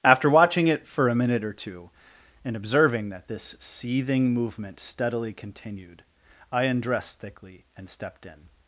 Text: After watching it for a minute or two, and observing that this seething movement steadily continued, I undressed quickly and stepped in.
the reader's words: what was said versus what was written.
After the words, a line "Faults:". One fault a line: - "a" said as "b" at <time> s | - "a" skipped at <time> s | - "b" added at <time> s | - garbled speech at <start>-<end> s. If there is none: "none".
After watching it for a minute or two, and observing that this seething movement steadily continued, I undressed thickly and stepped in.
Faults:
- "quickly" said as "thickly" at 7.2 s